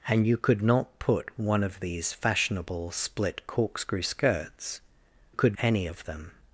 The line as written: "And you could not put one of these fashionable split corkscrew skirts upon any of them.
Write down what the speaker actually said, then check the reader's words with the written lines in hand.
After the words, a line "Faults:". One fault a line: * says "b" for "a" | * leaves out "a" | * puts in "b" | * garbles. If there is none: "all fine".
"And you could not put one of these fashionable split corkscrew skirts could any of them.
Faults:
* says "could" for "upon"